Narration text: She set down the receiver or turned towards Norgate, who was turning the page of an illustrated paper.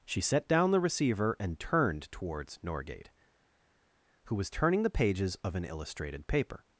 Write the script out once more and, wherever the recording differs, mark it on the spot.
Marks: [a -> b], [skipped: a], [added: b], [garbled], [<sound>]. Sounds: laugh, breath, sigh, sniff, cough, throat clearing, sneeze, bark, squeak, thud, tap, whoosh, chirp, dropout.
She set down the receiver [or -> and] turned towards Norgate, who was turning the [page -> pages] of an illustrated paper.